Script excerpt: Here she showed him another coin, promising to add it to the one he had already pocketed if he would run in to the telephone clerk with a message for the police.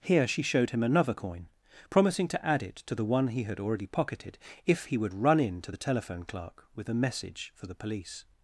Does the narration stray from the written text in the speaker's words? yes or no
no